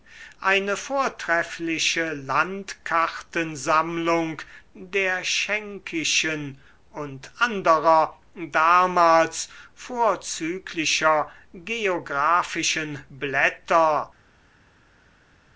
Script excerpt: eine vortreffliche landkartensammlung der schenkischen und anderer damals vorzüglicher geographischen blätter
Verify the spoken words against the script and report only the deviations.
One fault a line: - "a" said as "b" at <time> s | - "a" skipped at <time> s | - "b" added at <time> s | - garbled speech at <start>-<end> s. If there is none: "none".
none